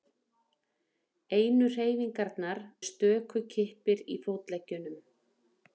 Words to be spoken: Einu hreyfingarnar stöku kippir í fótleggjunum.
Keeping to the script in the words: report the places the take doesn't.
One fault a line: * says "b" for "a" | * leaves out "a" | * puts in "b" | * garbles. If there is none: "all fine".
all fine